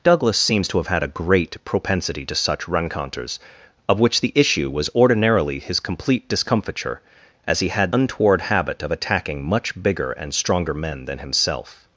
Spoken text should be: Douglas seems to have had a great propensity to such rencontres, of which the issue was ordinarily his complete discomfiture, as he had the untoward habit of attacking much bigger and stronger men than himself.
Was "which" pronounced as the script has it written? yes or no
yes